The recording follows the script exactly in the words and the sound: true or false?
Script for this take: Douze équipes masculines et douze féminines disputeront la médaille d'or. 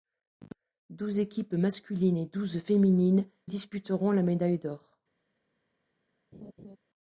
false